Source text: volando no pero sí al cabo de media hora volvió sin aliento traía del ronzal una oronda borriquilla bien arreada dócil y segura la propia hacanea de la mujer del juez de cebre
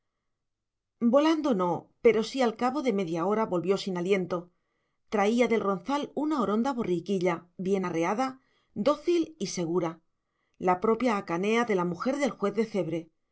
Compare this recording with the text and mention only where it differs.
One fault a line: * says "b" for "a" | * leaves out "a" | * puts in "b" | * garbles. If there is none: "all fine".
all fine